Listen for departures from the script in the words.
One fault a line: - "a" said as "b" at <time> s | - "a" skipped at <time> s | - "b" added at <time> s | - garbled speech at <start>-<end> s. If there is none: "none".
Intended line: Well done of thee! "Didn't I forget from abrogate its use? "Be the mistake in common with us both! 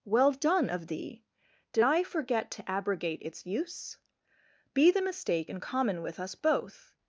- "Didn't" said as "Did" at 1.7 s
- "from" said as "to" at 2.5 s